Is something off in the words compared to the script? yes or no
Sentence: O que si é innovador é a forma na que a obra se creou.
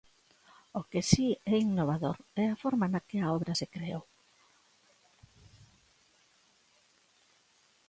no